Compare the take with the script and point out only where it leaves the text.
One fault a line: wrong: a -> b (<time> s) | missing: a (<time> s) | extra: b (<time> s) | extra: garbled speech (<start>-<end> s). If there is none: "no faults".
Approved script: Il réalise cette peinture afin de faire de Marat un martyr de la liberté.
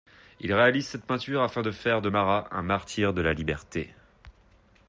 no faults